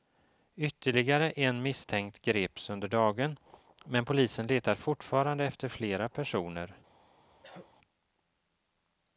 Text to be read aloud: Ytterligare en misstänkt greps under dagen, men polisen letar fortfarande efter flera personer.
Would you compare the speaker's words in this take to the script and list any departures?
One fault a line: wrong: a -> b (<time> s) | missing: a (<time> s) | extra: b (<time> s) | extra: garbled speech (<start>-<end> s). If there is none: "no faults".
no faults